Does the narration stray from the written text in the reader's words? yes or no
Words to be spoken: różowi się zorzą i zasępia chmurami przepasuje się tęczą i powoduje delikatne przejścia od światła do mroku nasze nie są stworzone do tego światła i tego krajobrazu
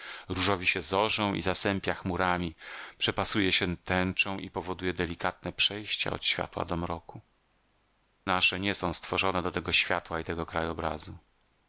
no